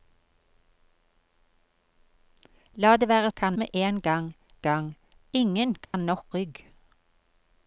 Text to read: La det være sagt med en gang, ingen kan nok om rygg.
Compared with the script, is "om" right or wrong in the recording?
wrong